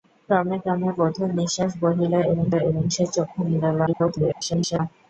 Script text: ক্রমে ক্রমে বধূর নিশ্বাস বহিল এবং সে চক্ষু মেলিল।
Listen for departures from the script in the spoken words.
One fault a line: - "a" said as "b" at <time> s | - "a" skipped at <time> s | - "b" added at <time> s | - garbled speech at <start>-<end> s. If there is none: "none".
- "এবং" added at 2.6 s
- garbled speech at 3.9-4.8 s